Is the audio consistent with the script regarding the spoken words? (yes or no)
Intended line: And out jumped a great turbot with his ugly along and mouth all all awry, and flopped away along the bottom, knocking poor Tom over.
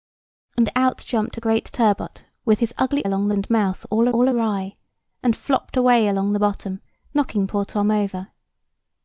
yes